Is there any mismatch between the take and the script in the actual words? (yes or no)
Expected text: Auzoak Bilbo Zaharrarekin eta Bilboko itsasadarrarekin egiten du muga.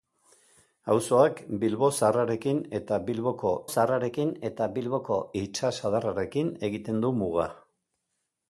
yes